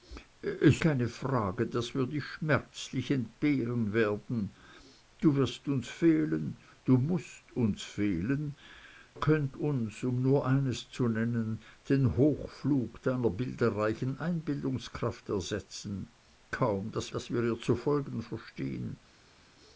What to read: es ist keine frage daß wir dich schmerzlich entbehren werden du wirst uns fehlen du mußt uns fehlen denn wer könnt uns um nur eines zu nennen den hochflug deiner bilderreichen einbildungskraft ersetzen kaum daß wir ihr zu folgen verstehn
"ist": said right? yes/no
no